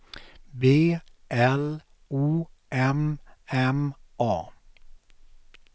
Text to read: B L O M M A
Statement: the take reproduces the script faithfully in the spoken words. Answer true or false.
true